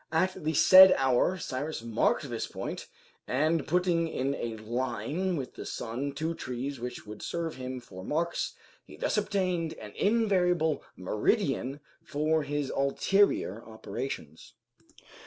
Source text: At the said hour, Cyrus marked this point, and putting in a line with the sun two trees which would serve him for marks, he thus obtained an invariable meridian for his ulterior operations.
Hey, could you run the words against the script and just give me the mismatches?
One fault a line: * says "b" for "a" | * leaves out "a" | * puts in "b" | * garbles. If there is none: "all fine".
all fine